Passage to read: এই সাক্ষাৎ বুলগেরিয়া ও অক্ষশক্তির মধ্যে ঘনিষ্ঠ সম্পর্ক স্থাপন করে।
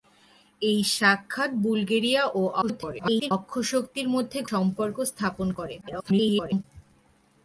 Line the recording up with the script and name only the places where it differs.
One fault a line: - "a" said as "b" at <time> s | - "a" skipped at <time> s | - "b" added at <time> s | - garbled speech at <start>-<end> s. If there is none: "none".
- garbled speech at 2.6-3.3 s
- "ঘনিষ্ঠ" skipped at 4.4 s
- garbled speech at 5.8-6.6 s